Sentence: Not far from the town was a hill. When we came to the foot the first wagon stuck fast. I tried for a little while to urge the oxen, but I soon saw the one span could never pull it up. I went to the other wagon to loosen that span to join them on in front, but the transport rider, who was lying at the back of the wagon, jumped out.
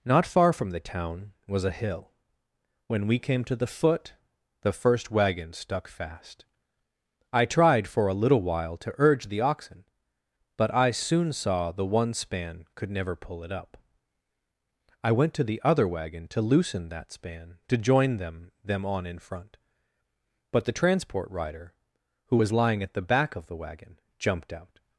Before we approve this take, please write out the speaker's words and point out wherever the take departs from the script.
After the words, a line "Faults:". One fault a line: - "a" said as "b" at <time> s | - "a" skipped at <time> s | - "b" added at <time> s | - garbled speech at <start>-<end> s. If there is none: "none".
Not far from the town was a hill. When we came to the foot the first wagon stuck fast. I tried for a little while to urge the oxen, but I soon saw the one span could never pull it up. I went to the other wagon to loosen that span to join them them on in front, but the transport rider, who was lying at the back of the wagon, jumped out.
Faults:
- "them" added at 18.6 s